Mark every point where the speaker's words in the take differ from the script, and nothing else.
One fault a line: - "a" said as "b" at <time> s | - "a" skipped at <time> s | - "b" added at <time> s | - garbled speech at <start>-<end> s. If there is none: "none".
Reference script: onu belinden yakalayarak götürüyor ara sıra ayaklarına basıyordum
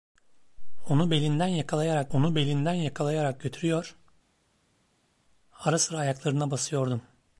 - "onu belinden yakalayarak" added at 2.1 s